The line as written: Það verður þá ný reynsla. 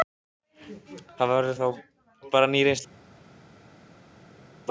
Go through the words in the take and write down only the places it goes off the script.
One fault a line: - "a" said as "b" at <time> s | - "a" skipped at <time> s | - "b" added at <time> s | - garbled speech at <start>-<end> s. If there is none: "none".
- "bara" added at 2.3 s